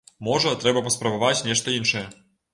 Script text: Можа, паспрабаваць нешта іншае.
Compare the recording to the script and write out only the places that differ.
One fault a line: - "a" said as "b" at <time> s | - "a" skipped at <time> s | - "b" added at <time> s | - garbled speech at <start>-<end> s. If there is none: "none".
- "трэба" added at 0.6 s